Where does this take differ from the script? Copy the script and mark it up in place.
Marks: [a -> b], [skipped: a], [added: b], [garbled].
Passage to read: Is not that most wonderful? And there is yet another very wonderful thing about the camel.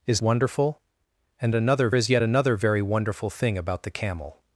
Is [skipped: not that most] wonderful? And [there -> another] is yet another very wonderful thing about the camel.